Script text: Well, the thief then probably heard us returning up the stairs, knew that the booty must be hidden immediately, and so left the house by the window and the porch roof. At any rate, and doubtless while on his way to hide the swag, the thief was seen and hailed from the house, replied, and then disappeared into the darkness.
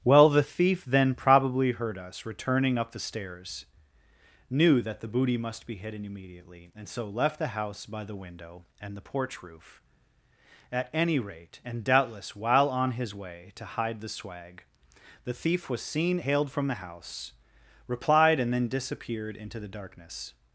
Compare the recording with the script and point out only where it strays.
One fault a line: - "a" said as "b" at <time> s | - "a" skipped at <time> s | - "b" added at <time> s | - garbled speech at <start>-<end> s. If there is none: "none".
- "and" skipped at 16.2 s